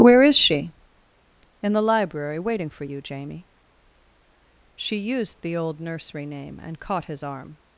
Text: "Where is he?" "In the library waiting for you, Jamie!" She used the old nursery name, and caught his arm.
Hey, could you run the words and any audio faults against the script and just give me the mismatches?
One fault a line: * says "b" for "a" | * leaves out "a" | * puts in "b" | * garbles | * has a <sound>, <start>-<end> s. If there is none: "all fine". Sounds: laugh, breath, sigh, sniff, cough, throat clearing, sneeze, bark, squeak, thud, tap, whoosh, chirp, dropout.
* says "she" for "he"